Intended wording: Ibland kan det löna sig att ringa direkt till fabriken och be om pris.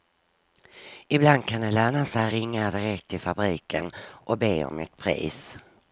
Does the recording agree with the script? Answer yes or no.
no